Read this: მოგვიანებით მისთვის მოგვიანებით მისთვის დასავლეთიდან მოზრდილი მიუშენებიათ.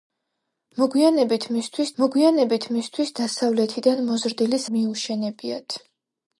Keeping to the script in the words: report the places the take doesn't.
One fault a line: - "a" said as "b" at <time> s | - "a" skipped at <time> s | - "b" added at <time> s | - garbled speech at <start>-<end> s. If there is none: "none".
none